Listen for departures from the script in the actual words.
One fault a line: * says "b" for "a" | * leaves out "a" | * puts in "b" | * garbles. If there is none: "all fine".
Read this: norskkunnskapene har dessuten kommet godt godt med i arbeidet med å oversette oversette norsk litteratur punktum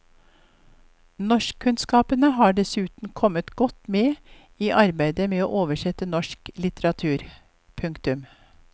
* leaves out "godt"
* leaves out "oversette"